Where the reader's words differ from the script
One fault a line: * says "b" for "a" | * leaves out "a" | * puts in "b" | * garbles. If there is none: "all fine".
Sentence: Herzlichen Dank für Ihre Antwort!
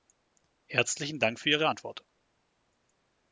all fine